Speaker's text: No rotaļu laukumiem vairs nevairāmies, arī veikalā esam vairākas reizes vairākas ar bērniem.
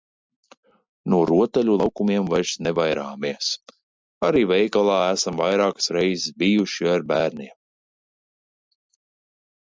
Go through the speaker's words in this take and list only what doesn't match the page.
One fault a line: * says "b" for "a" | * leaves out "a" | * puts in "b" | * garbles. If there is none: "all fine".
* says "bijuši" for "vairākas"